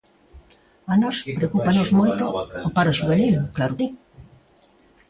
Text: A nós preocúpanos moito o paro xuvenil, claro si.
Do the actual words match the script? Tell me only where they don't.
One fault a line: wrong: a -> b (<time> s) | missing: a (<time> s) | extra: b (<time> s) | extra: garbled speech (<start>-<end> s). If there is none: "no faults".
no faults